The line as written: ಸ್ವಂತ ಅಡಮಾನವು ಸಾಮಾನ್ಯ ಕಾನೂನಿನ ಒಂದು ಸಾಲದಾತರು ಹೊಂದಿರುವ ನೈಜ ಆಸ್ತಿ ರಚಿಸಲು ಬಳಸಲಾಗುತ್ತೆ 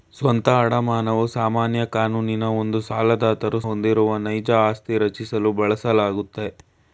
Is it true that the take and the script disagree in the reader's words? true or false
false